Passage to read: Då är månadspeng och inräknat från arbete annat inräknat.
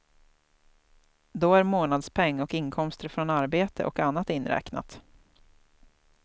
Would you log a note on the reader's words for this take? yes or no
yes